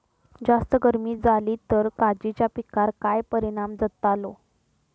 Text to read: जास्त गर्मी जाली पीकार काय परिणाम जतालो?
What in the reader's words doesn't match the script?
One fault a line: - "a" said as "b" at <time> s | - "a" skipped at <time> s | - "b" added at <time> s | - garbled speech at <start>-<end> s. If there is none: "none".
- "तर काजीच्या" added at 1.7 s